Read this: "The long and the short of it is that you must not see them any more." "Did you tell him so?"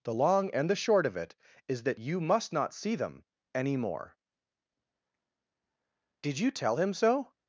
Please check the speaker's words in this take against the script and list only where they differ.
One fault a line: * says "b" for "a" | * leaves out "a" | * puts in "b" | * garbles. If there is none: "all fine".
all fine